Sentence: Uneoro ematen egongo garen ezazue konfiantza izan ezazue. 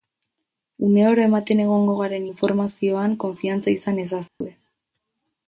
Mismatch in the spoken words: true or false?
true